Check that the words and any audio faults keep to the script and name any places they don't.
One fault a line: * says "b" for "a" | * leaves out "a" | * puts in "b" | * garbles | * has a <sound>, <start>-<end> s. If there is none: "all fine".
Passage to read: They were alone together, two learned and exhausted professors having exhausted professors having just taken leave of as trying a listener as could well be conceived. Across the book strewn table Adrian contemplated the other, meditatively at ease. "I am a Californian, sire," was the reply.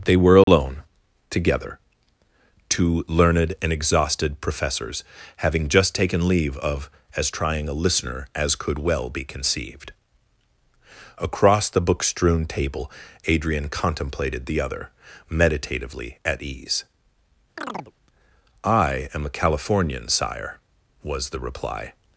* has a dropout, 0.4-0.5 s
* leaves out "exhausted professors having"
* has a chirp, 17.6-17.9 s